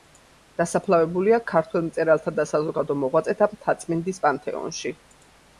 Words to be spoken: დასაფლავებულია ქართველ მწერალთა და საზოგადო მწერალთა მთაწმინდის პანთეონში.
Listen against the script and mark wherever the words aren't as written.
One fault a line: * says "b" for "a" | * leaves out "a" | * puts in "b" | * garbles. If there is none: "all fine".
* says "მოღვაწეთა" for "მწერალთა"